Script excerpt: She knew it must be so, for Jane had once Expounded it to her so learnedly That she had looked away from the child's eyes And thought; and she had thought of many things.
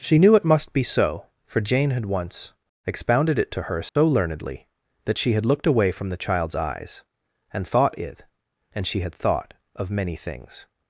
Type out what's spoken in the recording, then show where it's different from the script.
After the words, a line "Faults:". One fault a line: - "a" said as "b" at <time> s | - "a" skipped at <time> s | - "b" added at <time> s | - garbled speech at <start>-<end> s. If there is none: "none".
She knew it must be so, for Jane had once Expounded it to her so learnedly That she had looked away from the child's eyes And thought; it and she had thought of many things.
Faults:
- "it" added at 8.0 s